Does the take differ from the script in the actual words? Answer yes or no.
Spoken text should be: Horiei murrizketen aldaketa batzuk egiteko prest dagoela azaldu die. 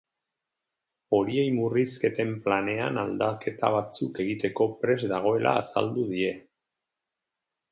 yes